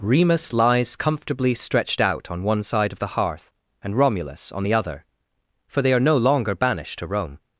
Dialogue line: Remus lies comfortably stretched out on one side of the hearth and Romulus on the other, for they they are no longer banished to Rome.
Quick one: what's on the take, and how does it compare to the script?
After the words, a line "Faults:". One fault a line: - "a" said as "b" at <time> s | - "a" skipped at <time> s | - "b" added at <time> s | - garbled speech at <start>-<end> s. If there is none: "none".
Remus lies comfortably stretched out on one side of the hearth and Romulus on the other, for they are no longer banished to Rome.
Faults:
- "they" skipped at 5.9 s